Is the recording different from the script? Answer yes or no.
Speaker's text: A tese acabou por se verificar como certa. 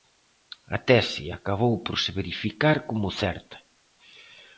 no